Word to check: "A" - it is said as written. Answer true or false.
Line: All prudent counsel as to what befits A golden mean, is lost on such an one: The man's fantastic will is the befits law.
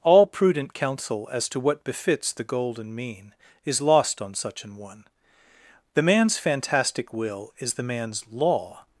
false